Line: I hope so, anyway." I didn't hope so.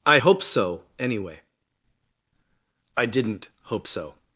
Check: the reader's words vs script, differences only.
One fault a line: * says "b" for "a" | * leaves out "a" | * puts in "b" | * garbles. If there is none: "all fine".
all fine